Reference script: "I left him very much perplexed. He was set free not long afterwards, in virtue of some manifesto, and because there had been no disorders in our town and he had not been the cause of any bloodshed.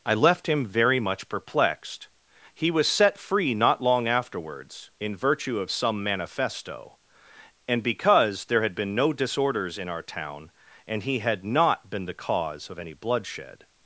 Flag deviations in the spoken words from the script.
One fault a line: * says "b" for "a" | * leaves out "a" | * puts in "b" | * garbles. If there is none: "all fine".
all fine